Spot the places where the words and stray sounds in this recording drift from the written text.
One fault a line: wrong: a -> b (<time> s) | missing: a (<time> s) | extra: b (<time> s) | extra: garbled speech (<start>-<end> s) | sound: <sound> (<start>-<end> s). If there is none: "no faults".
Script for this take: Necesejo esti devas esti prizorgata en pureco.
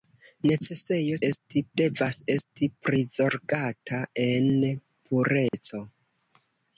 sound: dropout (5.5-5.5 s)